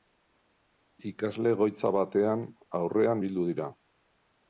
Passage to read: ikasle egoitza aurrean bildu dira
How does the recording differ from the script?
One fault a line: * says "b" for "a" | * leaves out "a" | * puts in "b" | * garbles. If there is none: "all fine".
* puts in "batean"